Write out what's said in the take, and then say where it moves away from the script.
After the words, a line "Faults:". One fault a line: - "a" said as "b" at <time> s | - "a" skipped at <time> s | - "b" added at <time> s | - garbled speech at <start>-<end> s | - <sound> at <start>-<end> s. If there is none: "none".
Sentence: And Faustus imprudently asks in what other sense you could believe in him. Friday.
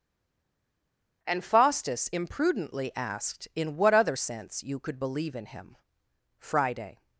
And Faustus imprudently asked in what other sense you could believe in him. Friday.
Faults:
- "asks" said as "asked" at 3.0 s